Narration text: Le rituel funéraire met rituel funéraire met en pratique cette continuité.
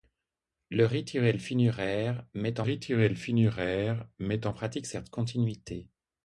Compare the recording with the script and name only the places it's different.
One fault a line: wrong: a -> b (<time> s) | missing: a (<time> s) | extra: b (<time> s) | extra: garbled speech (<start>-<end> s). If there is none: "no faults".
no faults